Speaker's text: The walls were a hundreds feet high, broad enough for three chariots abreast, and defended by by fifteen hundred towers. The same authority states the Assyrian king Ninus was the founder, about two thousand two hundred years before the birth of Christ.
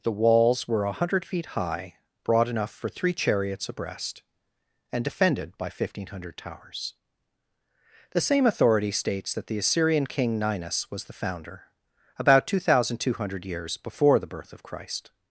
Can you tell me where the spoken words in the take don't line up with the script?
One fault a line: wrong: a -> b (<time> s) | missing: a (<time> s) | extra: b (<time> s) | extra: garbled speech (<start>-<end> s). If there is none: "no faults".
wrong: hundreds -> hundred (1.0 s)
missing: by (5.7 s)
extra: that (9.3 s)